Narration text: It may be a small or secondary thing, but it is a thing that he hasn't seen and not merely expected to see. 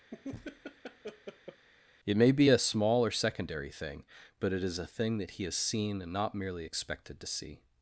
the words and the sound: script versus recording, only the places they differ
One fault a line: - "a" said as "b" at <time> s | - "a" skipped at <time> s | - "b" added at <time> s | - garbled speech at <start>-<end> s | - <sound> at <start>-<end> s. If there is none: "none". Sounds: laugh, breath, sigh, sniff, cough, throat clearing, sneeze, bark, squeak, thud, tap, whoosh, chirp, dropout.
- laugh at 0.1-1.7 s
- "hasn't" said as "has" at 5.4 s